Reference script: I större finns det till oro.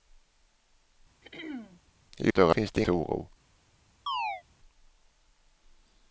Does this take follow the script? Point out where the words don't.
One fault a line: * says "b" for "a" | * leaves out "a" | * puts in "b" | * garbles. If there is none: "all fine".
all fine